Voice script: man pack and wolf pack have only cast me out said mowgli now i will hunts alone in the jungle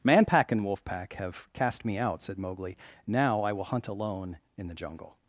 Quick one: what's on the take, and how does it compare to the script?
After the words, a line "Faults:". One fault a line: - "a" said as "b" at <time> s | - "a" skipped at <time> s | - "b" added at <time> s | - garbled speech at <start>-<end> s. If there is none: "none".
man pack and wolf pack have cast me out said mowgli now i will hunt alone in the jungle
Faults:
- "only" skipped at 1.5 s
- "hunts" said as "hunt" at 3.6 s